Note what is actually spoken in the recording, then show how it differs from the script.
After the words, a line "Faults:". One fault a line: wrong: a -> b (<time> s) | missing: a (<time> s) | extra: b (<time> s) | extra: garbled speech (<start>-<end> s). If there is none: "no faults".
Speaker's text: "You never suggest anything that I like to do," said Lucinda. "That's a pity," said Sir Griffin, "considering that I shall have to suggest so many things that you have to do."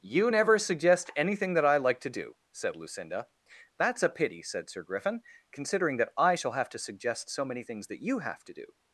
"You never suggest anything that I like to do," said Lucinda. "That's a pity," said Sir Griffin, "considering that I shall have to suggest so many things that you have to do."
Faults:
no faults